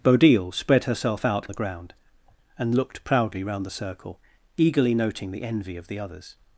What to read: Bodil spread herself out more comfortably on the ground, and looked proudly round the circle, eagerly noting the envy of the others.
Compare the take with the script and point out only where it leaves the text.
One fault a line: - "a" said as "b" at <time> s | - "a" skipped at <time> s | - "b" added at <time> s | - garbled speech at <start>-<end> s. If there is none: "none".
- "more comfortably on" skipped at 1.5 s